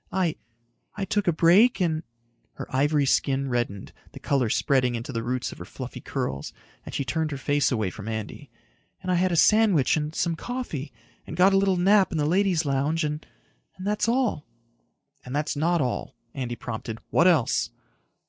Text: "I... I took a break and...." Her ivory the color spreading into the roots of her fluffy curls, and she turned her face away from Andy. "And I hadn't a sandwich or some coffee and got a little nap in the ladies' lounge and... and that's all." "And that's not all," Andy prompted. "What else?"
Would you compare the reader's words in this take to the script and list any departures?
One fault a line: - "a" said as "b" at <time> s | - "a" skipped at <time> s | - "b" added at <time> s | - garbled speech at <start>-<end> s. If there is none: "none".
- "skin reddened" added at 3.0 s
- "hadn't" said as "had" at 9.2 s
- "or" said as "and" at 9.9 s